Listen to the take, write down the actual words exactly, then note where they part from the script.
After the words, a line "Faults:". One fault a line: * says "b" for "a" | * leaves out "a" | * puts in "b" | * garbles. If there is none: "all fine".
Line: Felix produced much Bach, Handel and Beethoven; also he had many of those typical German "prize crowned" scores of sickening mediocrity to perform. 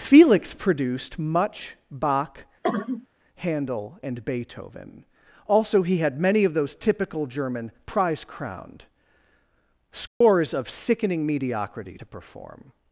Felix produced much Bach, Handel and Beethoven; also he had many of those typical German "prize crowned" scores of sickening mediocrity to perform.
Faults:
all fine